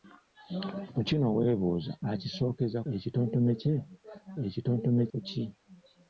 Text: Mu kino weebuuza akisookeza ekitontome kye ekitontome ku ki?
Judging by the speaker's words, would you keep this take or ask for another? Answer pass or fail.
pass